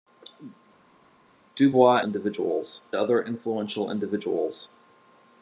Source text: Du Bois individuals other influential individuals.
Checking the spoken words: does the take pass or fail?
pass